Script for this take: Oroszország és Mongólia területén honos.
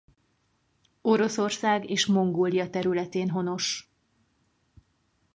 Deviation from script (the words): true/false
false